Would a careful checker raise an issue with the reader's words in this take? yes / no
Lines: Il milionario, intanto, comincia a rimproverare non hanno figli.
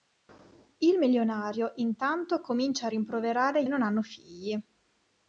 no